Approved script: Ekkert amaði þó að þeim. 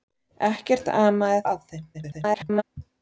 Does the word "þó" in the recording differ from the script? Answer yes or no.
yes